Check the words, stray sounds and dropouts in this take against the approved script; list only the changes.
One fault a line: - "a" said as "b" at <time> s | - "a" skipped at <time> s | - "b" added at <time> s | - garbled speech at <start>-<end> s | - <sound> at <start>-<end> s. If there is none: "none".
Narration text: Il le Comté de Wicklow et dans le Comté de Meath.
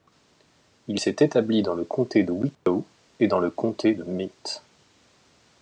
- "s'est établi dans" added at 1.0 s
- dropout at 2.5-2.7 s